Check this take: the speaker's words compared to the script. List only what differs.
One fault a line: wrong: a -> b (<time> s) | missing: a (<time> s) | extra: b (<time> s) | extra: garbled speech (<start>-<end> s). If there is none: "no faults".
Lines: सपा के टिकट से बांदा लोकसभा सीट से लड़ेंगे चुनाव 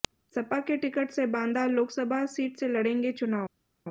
no faults